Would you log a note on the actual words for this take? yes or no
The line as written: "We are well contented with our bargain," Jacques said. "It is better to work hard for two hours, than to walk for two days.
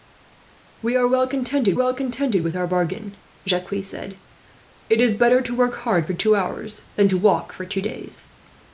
yes